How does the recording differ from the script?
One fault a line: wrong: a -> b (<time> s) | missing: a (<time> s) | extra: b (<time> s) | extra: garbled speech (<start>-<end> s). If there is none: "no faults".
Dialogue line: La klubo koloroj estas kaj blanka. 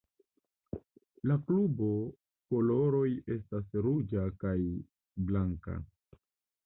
extra: ruĝa (3.9 s)